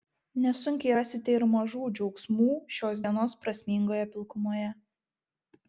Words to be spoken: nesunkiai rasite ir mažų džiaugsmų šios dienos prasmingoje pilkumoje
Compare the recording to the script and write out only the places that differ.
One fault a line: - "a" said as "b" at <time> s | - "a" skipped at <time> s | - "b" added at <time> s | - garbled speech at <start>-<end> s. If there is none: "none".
none